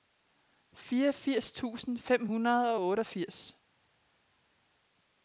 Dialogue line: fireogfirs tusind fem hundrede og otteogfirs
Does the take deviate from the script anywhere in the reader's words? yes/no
no